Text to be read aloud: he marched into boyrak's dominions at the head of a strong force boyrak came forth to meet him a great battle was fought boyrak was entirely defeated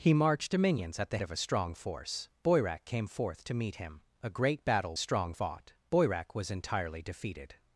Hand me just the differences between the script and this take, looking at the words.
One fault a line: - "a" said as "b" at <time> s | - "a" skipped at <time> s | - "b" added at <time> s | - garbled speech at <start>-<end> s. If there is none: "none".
- "into boyrak's" skipped at 0.5 s
- "head" skipped at 1.2 s
- "was" said as "strong" at 5.0 s